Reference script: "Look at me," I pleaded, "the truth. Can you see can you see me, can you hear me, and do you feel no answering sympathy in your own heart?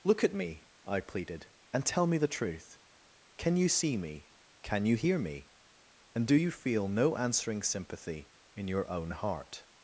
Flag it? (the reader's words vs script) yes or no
yes